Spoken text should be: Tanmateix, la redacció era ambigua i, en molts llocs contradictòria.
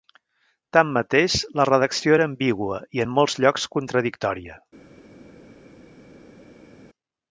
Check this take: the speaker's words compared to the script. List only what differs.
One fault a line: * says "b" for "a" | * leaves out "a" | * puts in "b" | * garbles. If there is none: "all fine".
all fine